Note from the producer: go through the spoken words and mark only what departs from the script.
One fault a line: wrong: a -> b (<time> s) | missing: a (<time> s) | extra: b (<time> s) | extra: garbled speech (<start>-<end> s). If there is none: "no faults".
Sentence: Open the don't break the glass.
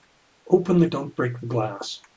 no faults